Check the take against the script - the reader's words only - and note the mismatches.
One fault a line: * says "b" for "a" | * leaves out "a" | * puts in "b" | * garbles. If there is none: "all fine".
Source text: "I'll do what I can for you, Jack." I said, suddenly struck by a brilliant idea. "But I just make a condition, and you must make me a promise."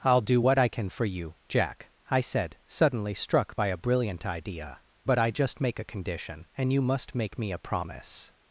all fine